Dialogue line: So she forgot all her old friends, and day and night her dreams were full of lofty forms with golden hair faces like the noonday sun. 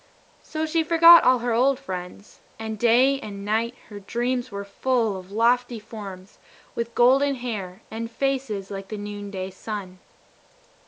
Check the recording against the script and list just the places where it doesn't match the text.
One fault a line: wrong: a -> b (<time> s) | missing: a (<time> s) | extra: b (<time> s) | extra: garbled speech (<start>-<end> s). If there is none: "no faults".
extra: and (7.9 s)